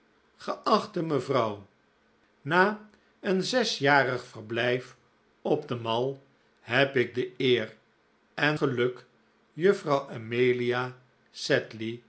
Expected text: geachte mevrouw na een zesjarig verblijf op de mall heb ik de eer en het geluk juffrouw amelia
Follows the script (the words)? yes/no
no